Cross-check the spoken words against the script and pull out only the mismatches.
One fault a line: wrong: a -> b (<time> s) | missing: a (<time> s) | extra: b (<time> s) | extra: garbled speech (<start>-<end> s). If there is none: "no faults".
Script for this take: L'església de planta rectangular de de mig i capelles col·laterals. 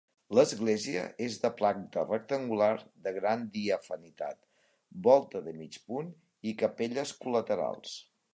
extra: és (1.2 s)
extra: gran diafanitat volta (3.2 s)
extra: punt (5.9 s)